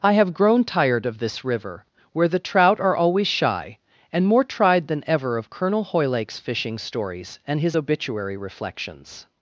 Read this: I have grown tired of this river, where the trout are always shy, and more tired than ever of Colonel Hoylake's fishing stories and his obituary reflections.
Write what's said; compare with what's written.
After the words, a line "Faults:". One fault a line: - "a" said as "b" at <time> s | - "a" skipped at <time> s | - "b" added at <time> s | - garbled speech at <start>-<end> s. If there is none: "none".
I have grown tired of this river, where the trout are always shy, and more tried than ever of Colonel Hoylake's fishing stories and his obituary reflections.
Faults:
- "tired" said as "tried" at 4.4 s